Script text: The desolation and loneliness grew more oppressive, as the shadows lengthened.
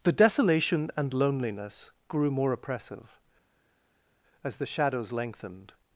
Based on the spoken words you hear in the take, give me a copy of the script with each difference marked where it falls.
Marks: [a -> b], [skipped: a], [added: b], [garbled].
The desolation and loneliness grew more oppressive, as the shadows lengthened.